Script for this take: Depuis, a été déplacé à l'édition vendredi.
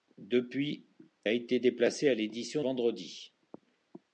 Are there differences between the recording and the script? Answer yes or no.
no